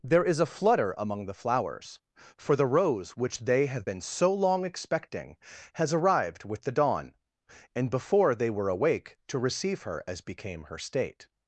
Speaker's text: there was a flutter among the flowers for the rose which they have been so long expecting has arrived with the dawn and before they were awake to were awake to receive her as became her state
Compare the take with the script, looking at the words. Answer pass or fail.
fail